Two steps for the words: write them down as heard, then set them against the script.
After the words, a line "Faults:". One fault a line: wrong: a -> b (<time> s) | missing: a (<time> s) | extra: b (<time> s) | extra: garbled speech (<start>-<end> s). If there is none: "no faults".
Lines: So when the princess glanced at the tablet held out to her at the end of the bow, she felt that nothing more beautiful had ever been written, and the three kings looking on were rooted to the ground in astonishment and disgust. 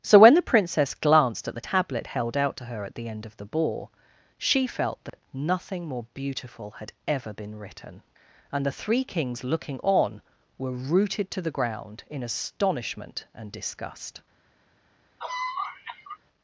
So when the princess glanced at the tablet held out to her at the end of the ball, she felt that nothing more beautiful had ever been written, and the three kings looking on were rooted to the ground in astonishment and disgust.
Faults:
wrong: bow -> ball (3.4 s)